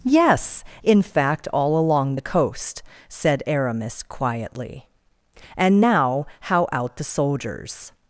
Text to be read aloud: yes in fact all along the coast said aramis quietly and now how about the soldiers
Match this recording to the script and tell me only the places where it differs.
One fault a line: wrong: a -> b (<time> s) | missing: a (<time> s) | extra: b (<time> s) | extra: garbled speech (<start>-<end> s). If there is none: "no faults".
wrong: about -> out (6.7 s)